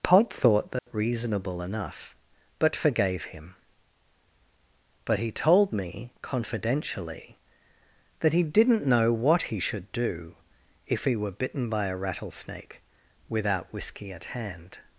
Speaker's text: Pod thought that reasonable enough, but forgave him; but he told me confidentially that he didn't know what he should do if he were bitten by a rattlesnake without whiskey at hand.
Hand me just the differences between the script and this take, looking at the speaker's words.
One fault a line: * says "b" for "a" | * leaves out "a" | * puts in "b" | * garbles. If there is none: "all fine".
all fine